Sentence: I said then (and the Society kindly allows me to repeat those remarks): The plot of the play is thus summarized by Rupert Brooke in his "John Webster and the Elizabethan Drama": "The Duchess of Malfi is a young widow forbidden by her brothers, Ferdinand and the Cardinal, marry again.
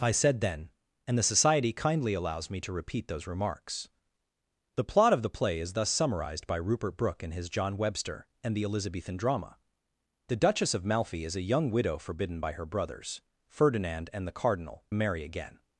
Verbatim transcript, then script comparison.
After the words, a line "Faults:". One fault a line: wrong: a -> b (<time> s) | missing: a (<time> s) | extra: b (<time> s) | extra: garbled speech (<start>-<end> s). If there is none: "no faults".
I said then (and the Society kindly allows me to repeat those remarks): The plot of the play is thus summarized by Rupert Brooke in his "John Webster and the Elizabethan Drama": "The Duchess of Malfi is a young widow forbidden by her brothers, Ferdinand and the Cardinal, marry again.
Faults:
no faults